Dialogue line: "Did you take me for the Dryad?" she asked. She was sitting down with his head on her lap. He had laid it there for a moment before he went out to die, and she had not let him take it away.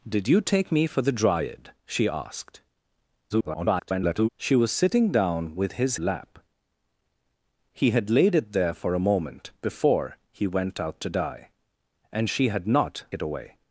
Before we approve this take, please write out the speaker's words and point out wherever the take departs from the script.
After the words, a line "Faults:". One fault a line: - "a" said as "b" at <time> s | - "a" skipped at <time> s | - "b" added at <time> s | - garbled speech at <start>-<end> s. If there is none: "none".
"Did you take me for the Dryad?" she asked. [garbled] She was sitting down with his lap. He had laid it there for a moment before he went out to die, and she had not it away.
Faults:
- garbled speech at 3.3-4.3 s
- "head on her" skipped at 6.0 s
- "let him take" skipped at 13.0 s